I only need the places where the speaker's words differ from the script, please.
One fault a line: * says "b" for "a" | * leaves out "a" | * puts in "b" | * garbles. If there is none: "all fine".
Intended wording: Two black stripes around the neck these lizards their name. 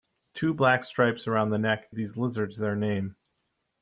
all fine